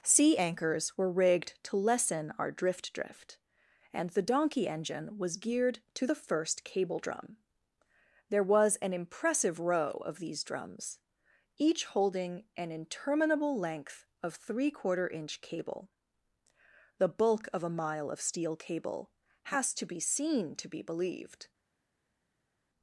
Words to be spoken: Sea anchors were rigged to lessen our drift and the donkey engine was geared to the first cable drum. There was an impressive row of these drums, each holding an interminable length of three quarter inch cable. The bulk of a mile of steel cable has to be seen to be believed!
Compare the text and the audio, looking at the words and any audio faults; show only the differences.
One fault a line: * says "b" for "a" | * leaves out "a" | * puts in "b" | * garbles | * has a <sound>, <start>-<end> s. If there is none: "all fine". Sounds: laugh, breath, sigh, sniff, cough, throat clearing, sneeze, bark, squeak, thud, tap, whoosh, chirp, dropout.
* puts in "drift"